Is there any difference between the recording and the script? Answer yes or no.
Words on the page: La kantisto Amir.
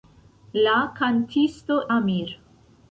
no